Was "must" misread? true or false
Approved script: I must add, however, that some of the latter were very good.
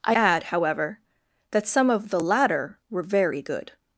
true